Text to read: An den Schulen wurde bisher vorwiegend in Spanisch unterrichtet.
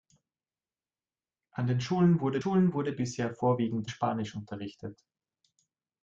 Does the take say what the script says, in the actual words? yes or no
no